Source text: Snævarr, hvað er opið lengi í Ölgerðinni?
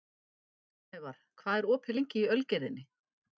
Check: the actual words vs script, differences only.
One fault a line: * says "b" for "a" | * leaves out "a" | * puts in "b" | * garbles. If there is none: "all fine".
all fine